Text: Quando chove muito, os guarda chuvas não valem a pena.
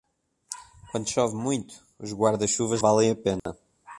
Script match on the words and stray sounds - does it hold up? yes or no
no